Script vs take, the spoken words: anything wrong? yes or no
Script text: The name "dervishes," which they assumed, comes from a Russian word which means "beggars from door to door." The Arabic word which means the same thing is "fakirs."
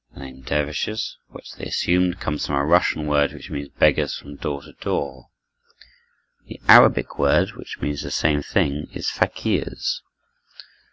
no